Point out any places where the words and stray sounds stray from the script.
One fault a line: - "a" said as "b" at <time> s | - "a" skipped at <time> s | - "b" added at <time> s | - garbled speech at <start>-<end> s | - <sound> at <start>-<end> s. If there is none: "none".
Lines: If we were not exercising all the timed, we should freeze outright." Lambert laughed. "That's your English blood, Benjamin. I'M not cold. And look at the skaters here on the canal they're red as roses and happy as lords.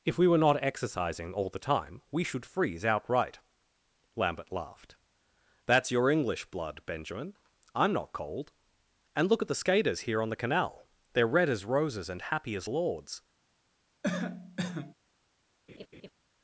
- "timed" said as "time" at 1.6 s
- cough at 14.0-14.9 s
- laugh at 15.7-16.1 s